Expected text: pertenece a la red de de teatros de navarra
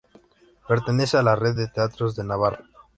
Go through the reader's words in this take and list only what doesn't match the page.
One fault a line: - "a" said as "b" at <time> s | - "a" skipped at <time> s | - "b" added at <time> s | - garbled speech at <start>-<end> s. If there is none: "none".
- "de" skipped at 1.7 s